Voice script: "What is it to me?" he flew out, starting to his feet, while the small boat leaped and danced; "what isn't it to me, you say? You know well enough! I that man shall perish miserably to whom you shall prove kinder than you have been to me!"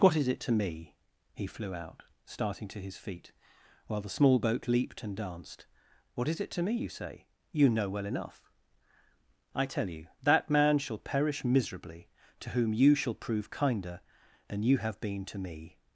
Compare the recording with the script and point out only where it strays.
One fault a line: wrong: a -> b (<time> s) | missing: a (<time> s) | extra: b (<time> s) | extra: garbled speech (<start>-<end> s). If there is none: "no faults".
wrong: isn't -> is (6.3 s)
extra: tell you (9.7 s)